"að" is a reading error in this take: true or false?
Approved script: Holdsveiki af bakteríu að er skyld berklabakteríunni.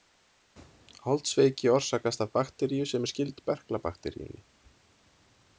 true